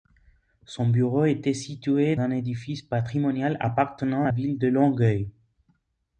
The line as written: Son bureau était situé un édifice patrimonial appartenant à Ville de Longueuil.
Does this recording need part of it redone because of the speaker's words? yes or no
no